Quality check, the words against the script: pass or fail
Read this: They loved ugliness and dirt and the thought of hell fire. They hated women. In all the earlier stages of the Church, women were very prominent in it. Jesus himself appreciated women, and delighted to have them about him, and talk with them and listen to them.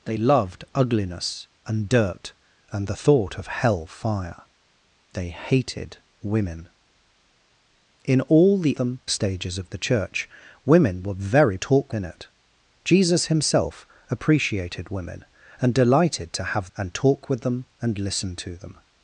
fail